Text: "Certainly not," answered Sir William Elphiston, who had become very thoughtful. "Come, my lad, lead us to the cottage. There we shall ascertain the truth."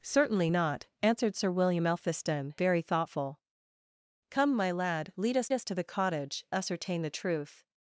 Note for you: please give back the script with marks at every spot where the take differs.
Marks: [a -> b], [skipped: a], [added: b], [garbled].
"Certainly not," answered Sir William Elphiston, [skipped: who had become] very thoughtful. "Come, my lad, lead us [added: us] to the cottage. [skipped: There we shall] ascertain the truth."